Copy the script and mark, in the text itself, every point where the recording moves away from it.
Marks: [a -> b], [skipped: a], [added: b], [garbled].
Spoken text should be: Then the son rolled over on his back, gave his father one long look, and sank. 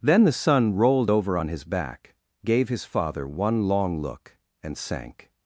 Then the son rolled over on his back, gave his father one long look, and sank.